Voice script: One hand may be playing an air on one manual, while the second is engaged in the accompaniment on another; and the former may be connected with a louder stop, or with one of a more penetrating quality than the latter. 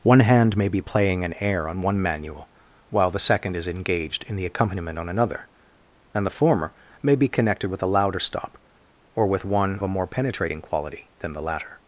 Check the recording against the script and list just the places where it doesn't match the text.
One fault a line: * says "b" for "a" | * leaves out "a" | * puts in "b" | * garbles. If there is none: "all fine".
* leaves out "of"